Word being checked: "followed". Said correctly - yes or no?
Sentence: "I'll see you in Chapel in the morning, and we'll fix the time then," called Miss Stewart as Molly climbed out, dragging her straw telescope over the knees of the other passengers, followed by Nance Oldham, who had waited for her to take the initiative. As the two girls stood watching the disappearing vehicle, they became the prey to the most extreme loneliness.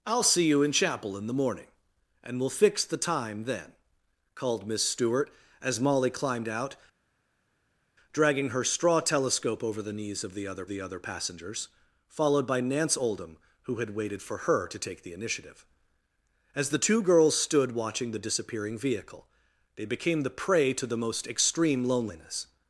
yes